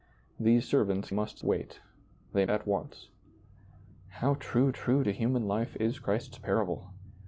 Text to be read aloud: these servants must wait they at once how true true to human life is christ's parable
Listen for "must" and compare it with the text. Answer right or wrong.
right